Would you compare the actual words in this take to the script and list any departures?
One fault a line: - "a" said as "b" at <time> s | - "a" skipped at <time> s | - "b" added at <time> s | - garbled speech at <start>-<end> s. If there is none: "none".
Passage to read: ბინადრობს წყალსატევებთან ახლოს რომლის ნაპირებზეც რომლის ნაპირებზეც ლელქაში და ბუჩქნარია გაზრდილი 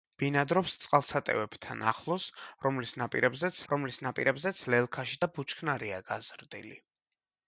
none